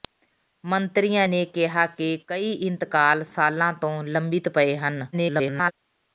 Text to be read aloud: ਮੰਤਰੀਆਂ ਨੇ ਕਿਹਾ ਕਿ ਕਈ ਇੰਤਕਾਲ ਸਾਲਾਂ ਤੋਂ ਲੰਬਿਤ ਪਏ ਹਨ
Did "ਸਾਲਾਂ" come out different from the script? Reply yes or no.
no